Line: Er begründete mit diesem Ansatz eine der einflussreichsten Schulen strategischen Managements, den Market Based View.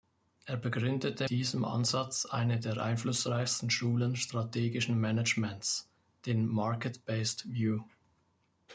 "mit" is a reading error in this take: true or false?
true